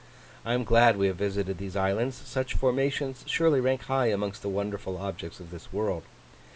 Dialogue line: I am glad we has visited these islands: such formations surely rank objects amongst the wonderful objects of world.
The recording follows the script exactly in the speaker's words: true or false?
false